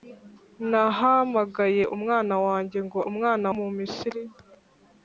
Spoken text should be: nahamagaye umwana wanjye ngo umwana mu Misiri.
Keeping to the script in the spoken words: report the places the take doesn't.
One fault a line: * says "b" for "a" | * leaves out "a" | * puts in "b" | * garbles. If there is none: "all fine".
all fine